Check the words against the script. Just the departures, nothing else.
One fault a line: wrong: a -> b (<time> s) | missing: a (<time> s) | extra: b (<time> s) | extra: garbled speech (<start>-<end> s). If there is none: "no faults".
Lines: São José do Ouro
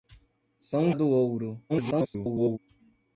missing: José (0.9 s)
extra: garbled speech (1.7-2.6 s)